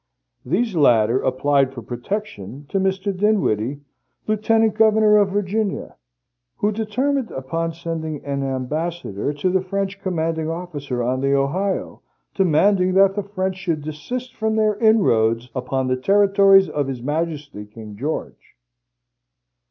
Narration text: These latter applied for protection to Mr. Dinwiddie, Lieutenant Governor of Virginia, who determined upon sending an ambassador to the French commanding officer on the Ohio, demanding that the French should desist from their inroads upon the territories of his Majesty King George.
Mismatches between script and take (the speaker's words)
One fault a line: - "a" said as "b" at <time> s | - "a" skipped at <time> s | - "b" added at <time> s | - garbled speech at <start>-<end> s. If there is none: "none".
none